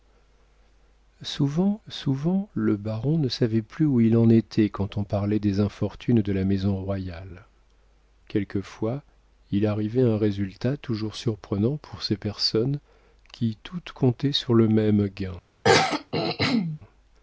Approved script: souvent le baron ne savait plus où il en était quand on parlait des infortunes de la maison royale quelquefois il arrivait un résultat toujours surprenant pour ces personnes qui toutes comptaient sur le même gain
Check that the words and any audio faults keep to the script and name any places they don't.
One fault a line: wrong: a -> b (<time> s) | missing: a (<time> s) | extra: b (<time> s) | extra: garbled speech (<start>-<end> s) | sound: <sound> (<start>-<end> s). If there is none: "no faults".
extra: souvent (1.9 s)
sound: throat clearing (15.6-16.8 s)